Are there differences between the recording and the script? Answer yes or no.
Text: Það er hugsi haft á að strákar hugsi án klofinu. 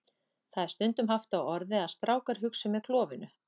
yes